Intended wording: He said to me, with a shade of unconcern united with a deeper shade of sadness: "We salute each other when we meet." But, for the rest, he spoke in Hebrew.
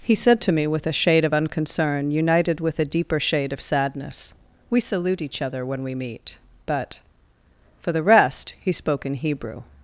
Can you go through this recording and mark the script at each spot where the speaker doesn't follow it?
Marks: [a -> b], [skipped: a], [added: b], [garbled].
He said to me, with a shade of unconcern united with a deeper shade of sadness: "We salute each other when we meet." But, for the rest, he spoke in Hebrew.